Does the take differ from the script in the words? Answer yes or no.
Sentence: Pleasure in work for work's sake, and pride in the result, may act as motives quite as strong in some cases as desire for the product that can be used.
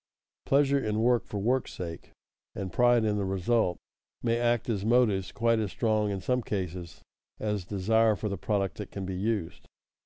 no